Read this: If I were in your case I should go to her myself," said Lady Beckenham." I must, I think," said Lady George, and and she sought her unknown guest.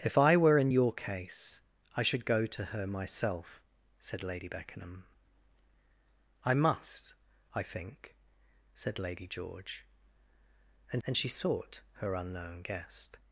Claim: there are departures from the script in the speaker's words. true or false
false